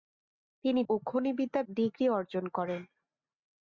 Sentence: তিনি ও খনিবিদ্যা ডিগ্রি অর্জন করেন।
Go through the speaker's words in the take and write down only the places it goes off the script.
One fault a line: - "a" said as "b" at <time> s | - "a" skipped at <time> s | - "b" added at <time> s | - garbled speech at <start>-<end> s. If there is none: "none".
none